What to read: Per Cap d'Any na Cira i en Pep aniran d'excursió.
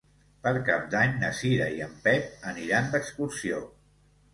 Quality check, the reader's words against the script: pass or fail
pass